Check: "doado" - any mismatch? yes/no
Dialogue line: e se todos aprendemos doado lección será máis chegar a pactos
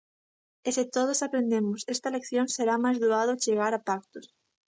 yes